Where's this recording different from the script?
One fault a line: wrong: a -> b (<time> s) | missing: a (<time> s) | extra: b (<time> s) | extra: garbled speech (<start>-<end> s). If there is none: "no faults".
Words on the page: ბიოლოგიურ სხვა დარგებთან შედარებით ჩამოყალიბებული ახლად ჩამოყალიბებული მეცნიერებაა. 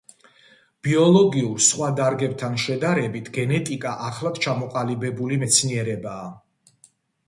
wrong: ჩამოყალიბებული -> გენეტიკა (3.4 s)